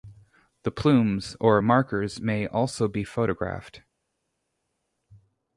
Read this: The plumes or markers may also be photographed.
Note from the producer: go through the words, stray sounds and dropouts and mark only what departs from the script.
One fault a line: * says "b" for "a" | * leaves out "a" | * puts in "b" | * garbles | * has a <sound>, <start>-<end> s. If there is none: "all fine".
all fine